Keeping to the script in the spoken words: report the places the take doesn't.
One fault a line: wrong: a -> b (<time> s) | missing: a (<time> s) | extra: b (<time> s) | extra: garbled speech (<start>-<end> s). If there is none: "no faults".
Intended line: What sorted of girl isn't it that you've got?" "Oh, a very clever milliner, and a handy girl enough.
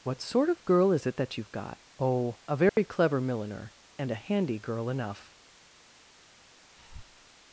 wrong: sorted -> sort (0.2 s)
wrong: isn't -> is (0.9 s)